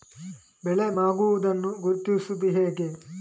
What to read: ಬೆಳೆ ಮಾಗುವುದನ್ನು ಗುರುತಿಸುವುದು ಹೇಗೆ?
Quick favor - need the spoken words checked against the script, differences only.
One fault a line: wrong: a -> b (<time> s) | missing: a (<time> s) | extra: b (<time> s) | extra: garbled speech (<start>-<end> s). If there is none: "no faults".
no faults